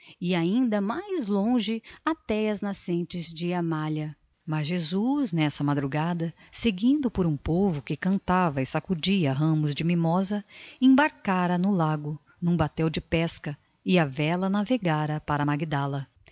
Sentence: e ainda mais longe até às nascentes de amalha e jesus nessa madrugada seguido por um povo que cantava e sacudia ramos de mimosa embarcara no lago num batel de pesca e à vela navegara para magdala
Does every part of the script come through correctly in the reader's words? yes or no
no